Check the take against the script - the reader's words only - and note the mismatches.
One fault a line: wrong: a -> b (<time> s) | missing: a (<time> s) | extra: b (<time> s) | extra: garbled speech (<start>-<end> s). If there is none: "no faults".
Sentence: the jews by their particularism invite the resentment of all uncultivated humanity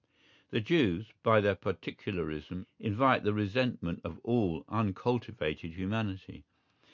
no faults